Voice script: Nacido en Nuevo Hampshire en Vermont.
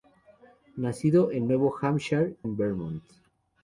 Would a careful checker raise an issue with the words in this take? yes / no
no